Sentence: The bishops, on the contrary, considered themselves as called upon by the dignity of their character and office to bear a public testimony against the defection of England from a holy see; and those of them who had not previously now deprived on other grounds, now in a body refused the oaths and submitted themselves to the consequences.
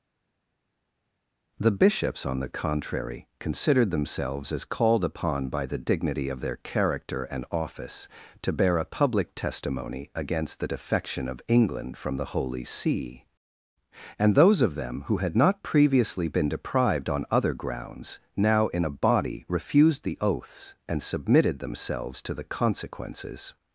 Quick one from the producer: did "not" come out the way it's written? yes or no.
yes